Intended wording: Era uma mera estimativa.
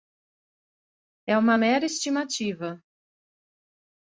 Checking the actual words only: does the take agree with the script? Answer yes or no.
no